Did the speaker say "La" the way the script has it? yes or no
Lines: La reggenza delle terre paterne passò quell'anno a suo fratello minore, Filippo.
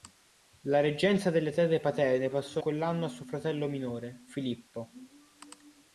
yes